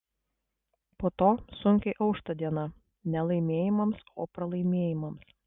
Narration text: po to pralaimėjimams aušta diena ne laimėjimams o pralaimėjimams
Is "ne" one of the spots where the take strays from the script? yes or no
no